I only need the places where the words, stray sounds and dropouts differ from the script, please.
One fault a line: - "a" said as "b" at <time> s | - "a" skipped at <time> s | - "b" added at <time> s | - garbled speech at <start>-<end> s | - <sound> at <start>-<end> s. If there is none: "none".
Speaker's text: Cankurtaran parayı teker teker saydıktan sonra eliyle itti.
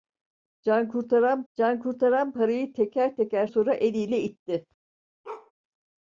- "cankurtaran" added at 1.5 s
- "saydıktan" skipped at 3.5 s
- bark at 5.2-5.5 s